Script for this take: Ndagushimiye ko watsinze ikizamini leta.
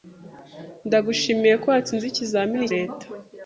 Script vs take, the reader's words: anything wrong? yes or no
no